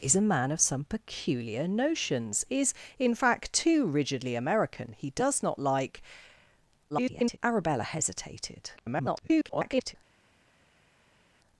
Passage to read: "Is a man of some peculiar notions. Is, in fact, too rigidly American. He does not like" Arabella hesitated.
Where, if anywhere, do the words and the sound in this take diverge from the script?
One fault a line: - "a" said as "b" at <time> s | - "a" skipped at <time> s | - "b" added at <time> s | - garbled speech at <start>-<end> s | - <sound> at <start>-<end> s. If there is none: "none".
- garbled speech at 6.9-7.4 s
- garbled speech at 8.8-10.0 s